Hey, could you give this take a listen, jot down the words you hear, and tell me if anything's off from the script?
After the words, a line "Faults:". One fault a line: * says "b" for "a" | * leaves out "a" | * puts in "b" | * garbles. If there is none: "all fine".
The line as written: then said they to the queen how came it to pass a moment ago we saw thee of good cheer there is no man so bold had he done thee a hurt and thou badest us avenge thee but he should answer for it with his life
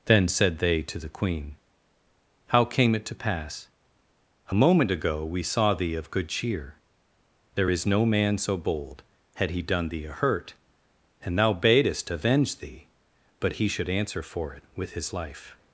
then said they to the queen how came it to pass a moment ago we saw thee of good cheer there is no man so bold had he done thee a hurt and thou badest avenge thee but he should answer for it with his life
Faults:
* leaves out "us"